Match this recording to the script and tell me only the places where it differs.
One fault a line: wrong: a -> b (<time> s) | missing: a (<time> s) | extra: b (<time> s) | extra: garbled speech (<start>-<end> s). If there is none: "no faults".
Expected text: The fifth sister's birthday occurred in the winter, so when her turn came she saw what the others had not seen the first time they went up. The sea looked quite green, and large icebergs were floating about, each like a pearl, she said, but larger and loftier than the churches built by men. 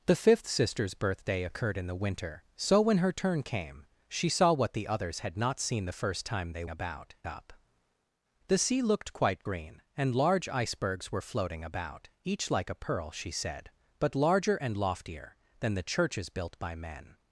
wrong: went -> about (6.7 s)